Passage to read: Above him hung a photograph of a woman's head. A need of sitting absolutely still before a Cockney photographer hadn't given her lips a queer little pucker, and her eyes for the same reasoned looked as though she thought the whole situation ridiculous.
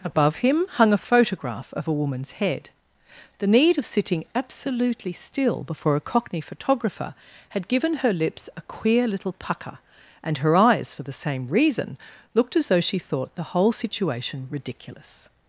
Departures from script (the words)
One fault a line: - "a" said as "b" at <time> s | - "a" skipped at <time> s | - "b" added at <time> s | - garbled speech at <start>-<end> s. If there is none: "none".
- "A" said as "The" at 3.4 s
- "hadn't" said as "had" at 7.5 s
- "reasoned" said as "reason" at 11.5 s